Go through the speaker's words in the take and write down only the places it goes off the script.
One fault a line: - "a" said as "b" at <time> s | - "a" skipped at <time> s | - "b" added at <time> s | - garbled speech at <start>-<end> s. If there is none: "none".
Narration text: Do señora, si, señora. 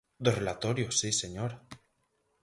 - "señora" said as "relatorio" at 0.4 s